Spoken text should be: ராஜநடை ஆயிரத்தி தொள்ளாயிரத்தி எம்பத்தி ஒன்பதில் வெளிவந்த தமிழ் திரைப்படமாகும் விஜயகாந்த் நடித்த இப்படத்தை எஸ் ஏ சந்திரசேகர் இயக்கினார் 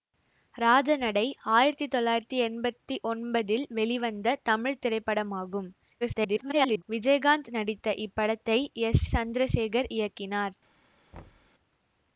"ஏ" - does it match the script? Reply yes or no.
no